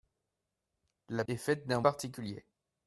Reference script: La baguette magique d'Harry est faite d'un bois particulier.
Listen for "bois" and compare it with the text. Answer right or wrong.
wrong